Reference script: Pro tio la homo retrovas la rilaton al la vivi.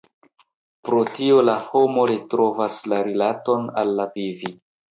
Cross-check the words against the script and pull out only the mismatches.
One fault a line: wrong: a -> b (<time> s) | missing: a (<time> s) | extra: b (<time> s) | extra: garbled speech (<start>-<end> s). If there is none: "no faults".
no faults